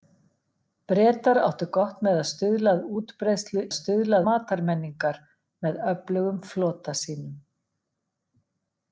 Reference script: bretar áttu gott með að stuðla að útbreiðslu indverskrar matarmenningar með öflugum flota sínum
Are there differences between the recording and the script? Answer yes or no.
yes